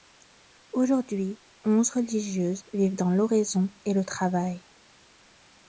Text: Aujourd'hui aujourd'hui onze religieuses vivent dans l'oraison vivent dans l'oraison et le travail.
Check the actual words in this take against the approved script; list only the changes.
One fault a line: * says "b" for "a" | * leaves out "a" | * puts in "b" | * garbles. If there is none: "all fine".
* leaves out "aujourd'hui"
* leaves out "vivent dans l'oraison"